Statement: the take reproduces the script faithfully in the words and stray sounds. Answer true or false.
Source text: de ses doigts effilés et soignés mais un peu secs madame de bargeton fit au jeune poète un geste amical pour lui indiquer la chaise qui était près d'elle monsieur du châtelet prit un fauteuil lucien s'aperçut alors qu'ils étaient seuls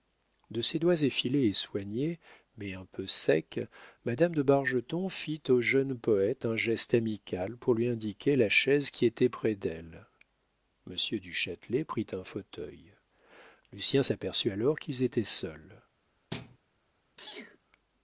false